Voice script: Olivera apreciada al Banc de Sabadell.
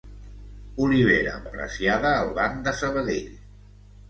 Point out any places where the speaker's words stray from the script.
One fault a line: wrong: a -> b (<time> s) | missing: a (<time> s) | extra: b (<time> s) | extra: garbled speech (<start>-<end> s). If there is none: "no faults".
no faults